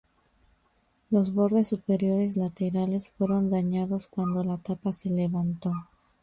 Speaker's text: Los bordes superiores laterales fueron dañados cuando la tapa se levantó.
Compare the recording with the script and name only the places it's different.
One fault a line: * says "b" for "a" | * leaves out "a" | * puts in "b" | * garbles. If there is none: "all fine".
all fine